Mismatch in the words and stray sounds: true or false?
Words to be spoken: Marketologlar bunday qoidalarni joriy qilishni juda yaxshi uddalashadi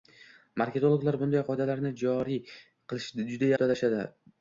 true